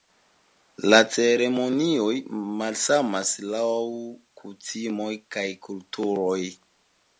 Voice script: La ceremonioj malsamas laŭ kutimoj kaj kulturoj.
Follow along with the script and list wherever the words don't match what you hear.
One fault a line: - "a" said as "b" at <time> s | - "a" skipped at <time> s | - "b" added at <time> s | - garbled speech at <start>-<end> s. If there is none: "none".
none